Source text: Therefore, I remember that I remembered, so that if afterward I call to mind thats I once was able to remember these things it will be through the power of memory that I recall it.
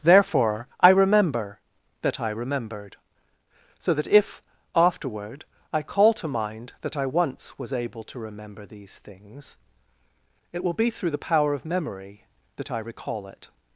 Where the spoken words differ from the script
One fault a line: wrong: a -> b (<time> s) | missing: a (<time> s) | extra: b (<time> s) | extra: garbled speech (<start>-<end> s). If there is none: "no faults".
wrong: thats -> that (6.8 s)